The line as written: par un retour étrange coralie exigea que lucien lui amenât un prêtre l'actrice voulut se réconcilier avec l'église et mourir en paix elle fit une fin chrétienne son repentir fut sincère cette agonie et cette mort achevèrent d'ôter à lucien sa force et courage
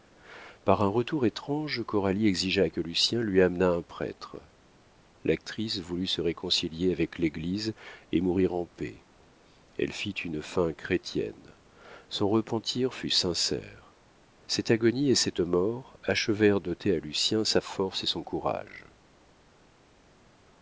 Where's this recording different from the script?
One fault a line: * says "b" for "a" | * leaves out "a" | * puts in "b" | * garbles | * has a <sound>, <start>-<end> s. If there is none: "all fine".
* puts in "son"